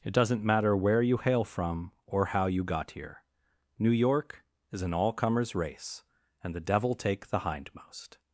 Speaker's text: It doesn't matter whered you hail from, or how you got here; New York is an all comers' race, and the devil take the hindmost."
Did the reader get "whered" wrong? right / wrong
wrong